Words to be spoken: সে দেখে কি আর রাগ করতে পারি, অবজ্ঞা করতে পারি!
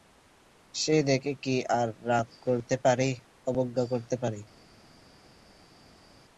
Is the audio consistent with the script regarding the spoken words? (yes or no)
yes